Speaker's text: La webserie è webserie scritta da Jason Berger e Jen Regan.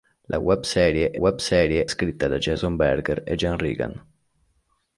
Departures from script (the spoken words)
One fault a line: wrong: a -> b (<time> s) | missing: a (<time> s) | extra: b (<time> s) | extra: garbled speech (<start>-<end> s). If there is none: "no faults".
no faults